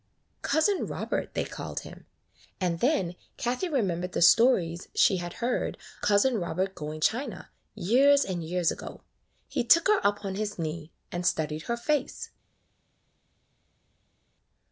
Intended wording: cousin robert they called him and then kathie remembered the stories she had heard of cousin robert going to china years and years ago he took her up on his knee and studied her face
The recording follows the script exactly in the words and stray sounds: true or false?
false